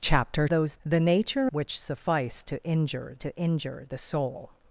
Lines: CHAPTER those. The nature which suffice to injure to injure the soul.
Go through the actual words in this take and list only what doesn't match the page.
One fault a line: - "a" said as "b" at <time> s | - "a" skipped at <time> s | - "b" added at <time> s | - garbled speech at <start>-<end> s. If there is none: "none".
none